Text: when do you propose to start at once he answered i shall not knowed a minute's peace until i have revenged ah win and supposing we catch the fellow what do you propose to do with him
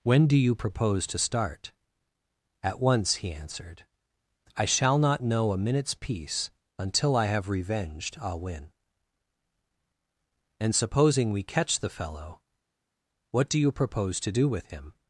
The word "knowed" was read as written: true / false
false